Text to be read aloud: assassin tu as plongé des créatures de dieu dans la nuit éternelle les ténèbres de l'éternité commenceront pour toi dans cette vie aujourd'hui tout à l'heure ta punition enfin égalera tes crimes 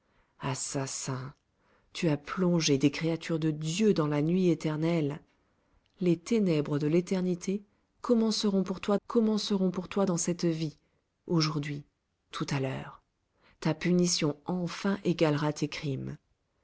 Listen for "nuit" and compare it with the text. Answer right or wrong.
right